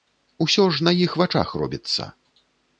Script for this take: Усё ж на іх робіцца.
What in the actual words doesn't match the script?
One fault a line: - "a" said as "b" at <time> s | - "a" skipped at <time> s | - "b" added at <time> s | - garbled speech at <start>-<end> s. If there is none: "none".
- "вачах" added at 1.2 s